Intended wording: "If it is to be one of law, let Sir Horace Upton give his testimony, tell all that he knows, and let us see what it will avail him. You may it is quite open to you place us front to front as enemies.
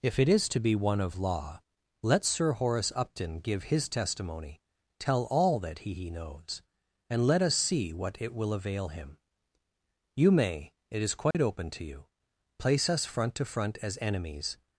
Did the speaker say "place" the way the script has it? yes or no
yes